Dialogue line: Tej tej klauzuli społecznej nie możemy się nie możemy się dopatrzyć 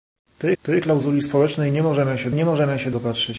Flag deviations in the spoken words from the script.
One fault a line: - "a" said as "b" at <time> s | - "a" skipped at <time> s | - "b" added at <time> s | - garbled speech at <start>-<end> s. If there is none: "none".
none